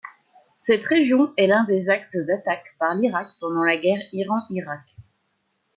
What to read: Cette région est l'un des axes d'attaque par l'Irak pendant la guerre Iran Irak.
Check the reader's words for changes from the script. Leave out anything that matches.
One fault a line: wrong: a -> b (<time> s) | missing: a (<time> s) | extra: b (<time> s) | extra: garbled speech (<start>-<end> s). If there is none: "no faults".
no faults